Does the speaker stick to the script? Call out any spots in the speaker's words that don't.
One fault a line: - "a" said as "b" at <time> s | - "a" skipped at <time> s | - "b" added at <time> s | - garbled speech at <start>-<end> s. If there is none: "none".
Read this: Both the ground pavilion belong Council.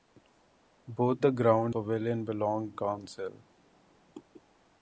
none